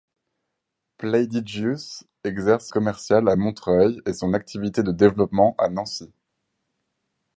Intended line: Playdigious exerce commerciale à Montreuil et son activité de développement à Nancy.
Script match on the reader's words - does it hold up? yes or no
yes